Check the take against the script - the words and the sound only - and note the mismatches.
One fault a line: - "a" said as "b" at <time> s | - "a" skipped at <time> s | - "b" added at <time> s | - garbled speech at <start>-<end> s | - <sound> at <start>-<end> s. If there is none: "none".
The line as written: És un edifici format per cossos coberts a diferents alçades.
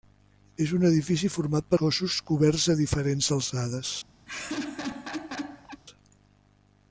- laugh at 4.3-5.8 s